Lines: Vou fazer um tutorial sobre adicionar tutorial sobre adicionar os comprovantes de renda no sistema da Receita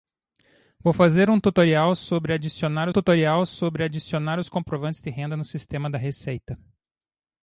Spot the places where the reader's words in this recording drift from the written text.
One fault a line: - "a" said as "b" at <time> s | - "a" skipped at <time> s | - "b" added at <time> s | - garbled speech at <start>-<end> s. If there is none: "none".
none